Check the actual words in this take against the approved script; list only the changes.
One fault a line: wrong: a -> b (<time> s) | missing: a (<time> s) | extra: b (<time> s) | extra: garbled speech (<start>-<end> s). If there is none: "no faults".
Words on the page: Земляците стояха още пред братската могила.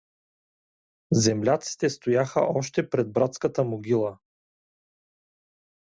no faults